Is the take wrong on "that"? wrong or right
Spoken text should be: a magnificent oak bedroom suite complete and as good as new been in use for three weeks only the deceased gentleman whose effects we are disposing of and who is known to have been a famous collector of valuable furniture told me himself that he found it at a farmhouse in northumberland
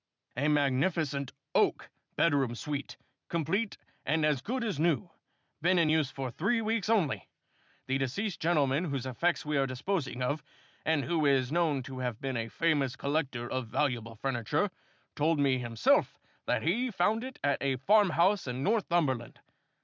right